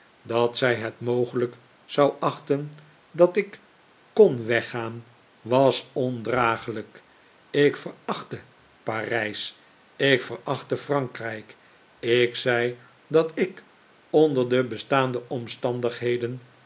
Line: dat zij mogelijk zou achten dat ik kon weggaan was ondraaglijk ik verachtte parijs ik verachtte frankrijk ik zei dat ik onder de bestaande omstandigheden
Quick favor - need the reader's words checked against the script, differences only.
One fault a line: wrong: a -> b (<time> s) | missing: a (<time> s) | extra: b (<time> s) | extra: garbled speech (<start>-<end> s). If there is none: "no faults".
extra: het (0.8 s)